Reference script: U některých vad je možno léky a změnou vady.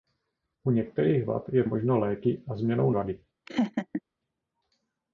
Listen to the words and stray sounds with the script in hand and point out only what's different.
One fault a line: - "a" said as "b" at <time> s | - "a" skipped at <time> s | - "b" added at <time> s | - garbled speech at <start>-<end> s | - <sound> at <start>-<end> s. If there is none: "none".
- laugh at 3.5-4.0 s